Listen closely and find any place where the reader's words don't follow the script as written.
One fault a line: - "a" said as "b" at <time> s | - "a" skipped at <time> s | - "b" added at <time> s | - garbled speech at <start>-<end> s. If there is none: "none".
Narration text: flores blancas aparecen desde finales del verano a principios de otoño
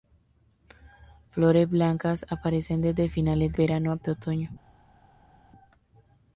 - "del" skipped at 3.5 s
- "principios" skipped at 4.0 s